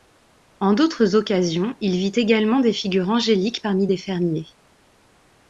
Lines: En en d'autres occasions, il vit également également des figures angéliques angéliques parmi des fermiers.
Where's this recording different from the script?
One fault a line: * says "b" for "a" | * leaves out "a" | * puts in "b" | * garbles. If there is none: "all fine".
* leaves out "en"
* leaves out "également"
* leaves out "angéliques"